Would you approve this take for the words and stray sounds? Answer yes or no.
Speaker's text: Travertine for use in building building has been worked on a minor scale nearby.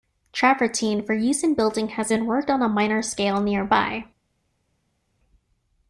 no